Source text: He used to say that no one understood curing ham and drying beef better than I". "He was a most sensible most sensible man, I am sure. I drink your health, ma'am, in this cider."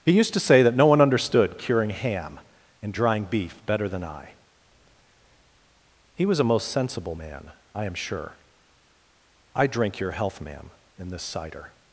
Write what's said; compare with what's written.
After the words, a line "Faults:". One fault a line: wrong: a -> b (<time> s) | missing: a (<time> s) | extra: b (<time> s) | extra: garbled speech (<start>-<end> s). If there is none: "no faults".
He used to say that no one understood curing ham and drying beef better than I". "He was a most sensible man, I am sure. I drink your health, ma'am, in this cider."
Faults:
missing: most sensible (7.2 s)